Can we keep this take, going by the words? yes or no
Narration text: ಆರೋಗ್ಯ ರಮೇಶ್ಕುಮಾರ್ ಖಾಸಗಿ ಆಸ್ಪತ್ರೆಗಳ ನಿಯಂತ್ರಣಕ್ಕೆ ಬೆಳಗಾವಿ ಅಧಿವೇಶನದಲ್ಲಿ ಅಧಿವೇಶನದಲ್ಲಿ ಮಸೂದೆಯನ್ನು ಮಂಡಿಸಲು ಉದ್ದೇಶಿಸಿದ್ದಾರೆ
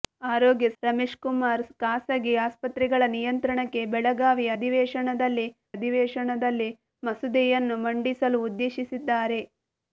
yes